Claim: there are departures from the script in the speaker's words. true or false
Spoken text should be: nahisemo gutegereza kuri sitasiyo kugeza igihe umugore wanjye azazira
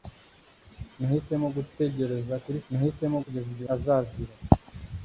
true